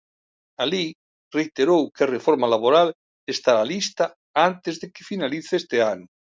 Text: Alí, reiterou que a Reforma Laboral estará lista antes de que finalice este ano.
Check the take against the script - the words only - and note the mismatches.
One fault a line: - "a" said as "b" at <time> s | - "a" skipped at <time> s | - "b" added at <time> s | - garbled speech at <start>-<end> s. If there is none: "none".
none